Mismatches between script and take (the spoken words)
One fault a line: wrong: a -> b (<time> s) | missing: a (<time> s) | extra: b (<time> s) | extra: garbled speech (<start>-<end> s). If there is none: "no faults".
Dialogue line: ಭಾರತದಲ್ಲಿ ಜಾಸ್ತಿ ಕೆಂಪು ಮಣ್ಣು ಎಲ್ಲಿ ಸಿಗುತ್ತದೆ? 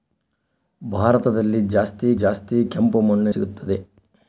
extra: ಜಾಸ್ತಿ (2.2 s)
missing: ಎಲ್ಲಿ (3.3 s)